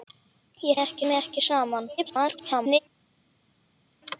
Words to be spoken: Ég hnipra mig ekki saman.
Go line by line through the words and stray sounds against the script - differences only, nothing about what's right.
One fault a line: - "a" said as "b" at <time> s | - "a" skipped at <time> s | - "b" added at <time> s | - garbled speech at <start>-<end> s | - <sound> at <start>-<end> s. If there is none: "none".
- "hnipra" said as "ekki" at 0.8 s
- garbled speech at 2.0-2.8 s